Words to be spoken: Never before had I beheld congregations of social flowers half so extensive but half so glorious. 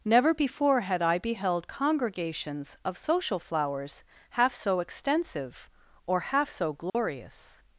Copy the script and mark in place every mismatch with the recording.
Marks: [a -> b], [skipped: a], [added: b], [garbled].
Never before had I beheld congregations of social flowers half so extensive [but -> or] half so glorious.